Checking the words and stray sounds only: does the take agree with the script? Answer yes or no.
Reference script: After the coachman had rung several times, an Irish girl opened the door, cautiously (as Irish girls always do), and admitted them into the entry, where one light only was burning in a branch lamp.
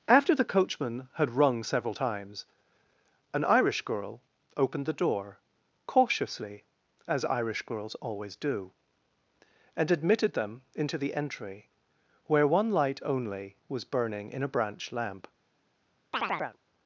no